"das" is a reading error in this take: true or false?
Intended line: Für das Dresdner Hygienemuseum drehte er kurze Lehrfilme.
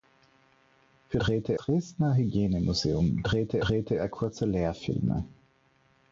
true